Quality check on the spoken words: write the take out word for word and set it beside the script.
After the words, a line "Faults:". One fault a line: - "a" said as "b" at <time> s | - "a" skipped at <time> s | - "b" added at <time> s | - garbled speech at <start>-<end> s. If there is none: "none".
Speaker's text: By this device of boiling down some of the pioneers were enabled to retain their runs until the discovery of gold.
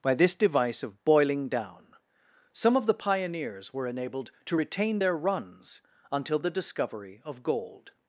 By this device of boiling down some of the pioneers were enabled to retain their runs until the discovery of gold.
Faults:
none